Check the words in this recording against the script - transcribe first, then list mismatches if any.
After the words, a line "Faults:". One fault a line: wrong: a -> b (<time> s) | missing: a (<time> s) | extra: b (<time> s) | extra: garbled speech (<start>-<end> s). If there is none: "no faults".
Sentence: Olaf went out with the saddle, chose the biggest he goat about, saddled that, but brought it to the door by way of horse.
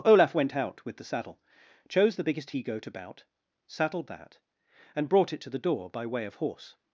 Olaf went out with the saddle, chose the biggest he goat about, saddled that, and brought it to the door by way of horse.
Faults:
wrong: but -> and (4.9 s)